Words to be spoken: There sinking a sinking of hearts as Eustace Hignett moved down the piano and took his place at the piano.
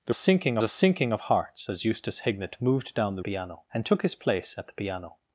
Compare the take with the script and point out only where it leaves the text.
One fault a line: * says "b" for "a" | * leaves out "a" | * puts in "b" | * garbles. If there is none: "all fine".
all fine